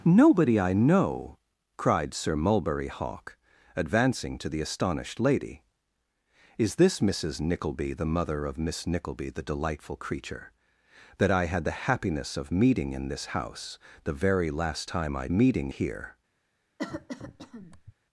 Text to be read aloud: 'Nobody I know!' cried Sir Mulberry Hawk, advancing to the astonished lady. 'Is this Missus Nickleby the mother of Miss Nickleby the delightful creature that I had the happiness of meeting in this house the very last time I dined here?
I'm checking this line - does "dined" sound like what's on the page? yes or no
no